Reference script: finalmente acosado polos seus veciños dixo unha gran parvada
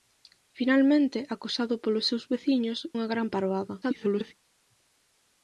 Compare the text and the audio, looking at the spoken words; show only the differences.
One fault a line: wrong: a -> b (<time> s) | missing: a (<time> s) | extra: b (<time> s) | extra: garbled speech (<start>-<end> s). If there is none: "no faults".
missing: dixo (2.8 s)
extra: garbled speech (3.8-4.3 s)